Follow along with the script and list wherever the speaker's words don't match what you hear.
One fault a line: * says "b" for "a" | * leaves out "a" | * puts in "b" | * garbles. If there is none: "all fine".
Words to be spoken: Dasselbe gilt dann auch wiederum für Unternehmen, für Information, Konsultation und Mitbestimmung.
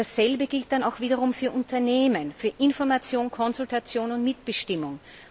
all fine